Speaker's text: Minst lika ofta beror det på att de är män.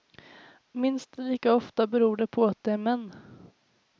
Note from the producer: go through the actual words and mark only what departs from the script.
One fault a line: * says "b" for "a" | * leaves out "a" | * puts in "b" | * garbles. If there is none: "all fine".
all fine